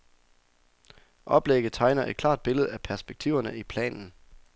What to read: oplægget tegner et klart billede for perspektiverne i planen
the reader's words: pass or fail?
fail